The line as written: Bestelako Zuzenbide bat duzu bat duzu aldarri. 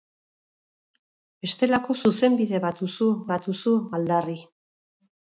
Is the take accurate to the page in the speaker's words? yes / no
yes